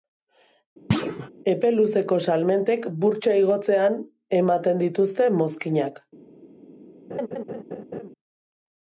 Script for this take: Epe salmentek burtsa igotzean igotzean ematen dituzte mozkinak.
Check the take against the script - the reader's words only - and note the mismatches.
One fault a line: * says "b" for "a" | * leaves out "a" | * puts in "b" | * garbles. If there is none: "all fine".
* puts in "luzeko"
* leaves out "igotzean"